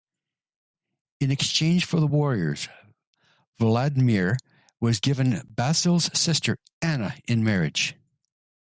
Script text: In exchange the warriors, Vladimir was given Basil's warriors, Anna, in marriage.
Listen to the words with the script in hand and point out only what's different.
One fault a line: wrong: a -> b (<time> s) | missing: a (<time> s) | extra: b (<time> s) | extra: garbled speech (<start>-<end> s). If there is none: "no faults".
extra: for (1.9 s)
wrong: warriors -> sister (6.2 s)